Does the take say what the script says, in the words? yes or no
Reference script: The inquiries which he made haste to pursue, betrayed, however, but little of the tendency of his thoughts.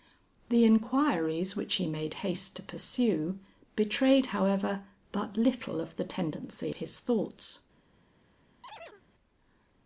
no